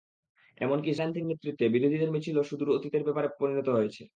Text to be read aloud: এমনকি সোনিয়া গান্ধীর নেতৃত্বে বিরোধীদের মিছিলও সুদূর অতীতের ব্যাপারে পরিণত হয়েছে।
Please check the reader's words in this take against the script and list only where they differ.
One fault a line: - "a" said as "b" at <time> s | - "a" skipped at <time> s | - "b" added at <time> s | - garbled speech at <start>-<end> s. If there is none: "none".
- "সোনিয়া" skipped at 0.9 s